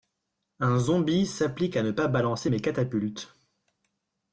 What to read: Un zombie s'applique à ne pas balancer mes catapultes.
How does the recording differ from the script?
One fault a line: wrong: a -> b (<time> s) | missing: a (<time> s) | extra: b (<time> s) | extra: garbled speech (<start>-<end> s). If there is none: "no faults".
no faults